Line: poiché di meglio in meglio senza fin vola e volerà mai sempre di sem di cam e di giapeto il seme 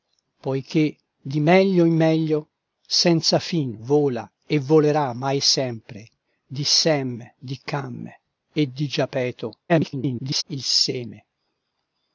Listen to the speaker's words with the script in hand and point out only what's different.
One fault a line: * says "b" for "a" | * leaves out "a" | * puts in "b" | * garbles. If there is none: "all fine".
* garbles